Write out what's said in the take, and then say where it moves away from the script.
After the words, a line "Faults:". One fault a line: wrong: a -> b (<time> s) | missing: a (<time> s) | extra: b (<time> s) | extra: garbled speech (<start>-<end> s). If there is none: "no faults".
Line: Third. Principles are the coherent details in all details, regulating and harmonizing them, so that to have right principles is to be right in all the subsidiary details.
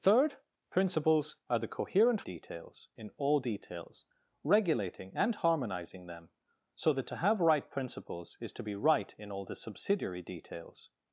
Third. Principles are the coherent details in all details, regulating and harmonizing them, so that to have right principles is to be right in all the subsidiary details.
Faults:
no faults